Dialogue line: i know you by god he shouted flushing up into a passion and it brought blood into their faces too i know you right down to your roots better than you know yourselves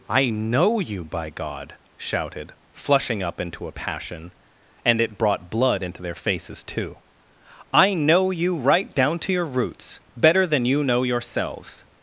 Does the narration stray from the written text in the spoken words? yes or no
yes